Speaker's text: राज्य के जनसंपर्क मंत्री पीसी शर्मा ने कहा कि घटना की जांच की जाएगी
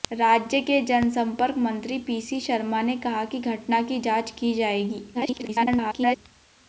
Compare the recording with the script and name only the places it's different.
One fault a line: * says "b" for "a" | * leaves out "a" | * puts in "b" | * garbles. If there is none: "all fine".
* garbles